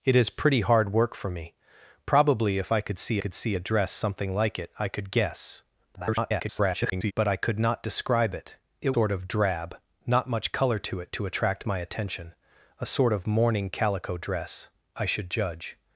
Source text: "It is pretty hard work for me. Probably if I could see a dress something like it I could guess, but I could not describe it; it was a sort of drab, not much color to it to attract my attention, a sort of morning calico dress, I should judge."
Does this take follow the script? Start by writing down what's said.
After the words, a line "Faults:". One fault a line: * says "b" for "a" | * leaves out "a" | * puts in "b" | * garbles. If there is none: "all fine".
"It is pretty hard work for me. Probably if I could see could see a dress something like it I could guess, [garbled] but I could not describe it; it sort of drab, not much color to it to attract my attention, a sort of morning calico dress, I should judge."
Faults:
* puts in "could see"
* garbles
* leaves out "was a"